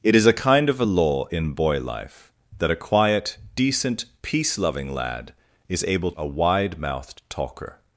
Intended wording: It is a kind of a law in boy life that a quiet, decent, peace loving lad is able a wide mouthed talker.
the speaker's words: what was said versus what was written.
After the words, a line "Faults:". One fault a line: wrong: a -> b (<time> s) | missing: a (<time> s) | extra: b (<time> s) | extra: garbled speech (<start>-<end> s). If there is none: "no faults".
It is a kind of a law in boy life that a quiet, decent, peace loving lad is able a wide mouthed talker.
Faults:
no faults